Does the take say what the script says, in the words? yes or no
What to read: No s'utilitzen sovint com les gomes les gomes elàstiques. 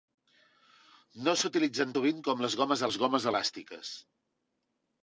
yes